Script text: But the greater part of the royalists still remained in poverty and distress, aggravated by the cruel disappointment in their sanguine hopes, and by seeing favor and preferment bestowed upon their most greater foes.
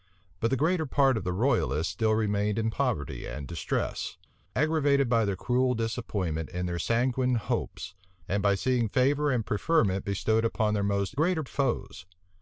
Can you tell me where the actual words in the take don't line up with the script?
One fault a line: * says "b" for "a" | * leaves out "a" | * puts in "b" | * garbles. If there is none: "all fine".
all fine